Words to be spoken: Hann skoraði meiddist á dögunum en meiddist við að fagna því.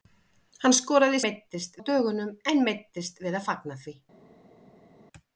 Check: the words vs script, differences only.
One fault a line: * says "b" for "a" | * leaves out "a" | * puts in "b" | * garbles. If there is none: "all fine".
all fine